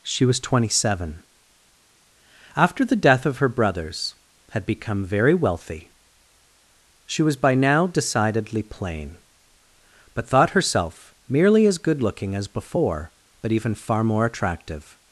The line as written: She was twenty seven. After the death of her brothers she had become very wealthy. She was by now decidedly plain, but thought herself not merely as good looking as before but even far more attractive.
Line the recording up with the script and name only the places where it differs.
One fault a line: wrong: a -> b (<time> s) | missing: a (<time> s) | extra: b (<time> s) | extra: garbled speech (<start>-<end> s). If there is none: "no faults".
missing: she (4.2 s)
missing: not (11.1 s)